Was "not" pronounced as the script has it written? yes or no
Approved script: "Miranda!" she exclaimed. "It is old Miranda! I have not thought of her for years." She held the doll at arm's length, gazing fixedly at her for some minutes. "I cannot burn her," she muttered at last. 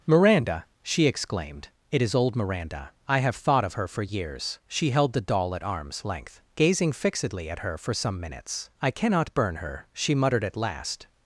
no